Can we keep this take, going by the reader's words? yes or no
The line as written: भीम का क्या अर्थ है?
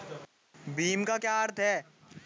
yes